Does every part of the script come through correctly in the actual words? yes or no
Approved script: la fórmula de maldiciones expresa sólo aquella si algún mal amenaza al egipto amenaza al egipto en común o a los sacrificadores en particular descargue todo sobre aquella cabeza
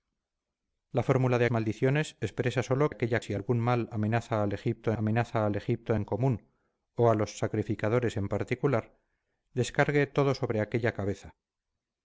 yes